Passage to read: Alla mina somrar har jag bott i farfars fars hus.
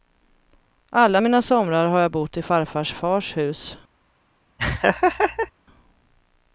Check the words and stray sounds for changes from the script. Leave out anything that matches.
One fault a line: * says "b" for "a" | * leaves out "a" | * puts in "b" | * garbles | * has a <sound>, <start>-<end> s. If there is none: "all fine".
* has a laugh, 4.6-5.5 s